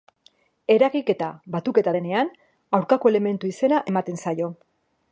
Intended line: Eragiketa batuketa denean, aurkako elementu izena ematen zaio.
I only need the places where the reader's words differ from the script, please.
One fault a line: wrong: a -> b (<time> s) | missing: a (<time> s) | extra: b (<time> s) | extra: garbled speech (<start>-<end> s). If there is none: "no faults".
no faults